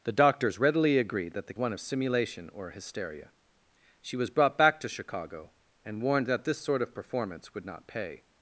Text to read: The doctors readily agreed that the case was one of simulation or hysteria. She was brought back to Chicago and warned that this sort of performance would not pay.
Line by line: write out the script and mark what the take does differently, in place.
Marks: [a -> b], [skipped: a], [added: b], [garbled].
The doctors readily agreed that the [skipped: case was] one of simulation or hysteria. She was brought back to Chicago and warned that this sort of performance would not pay.